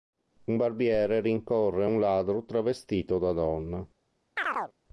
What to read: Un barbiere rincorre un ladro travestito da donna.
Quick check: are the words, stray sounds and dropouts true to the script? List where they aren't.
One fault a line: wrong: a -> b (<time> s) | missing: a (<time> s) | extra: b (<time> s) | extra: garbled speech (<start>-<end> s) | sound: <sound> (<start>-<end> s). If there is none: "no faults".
sound: chirp (4.4-4.7 s)